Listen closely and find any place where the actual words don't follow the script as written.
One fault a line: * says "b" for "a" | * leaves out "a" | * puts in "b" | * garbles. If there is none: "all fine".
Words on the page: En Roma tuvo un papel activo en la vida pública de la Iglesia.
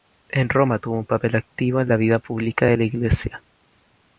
all fine